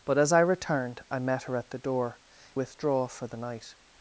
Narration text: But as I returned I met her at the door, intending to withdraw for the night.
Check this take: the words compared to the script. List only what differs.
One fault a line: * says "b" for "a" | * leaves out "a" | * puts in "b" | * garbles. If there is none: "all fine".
* leaves out "intending to"